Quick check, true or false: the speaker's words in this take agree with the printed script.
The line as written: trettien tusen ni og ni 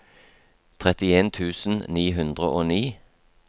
false